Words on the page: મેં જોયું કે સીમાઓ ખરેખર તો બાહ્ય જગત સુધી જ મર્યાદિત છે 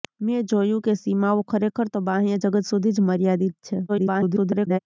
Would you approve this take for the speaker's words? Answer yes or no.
no